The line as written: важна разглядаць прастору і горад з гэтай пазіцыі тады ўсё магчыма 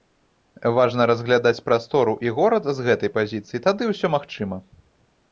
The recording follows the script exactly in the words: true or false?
true